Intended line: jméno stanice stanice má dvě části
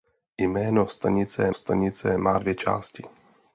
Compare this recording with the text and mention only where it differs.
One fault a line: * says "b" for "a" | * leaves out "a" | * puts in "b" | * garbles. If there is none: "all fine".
all fine